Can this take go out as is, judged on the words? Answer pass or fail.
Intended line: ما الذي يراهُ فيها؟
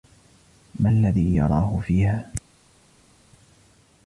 pass